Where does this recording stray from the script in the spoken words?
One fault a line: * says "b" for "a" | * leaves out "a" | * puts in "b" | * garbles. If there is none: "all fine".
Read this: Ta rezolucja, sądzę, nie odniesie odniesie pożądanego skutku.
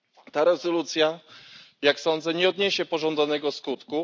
* puts in "jak"
* leaves out "odniesie"